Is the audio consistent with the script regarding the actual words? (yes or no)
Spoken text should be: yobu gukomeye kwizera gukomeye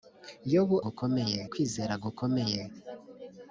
yes